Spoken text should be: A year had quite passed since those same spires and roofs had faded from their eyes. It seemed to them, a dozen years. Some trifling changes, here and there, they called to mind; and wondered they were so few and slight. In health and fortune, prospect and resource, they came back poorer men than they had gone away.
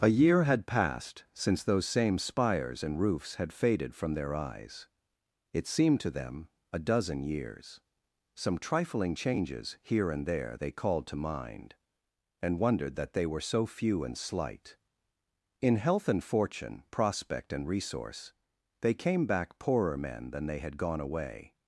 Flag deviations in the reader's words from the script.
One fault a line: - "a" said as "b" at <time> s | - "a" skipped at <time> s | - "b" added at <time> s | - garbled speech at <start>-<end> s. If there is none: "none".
- "quite" skipped at 0.7 s
- "that" added at 12.9 s